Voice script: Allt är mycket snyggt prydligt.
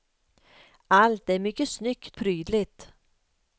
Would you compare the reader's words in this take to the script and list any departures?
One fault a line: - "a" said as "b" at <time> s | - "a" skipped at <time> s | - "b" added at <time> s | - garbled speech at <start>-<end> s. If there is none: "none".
none